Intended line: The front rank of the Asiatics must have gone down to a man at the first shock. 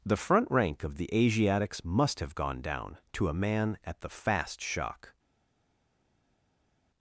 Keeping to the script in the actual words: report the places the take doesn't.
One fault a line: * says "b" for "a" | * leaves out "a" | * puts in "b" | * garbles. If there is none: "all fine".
* says "fast" for "first"